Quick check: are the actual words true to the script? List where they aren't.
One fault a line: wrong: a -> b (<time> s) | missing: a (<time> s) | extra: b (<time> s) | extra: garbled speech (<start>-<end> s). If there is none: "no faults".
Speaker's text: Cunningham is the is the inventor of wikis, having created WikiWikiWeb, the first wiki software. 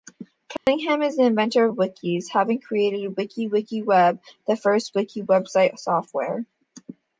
missing: is the (1.2 s)
extra: website (5.2 s)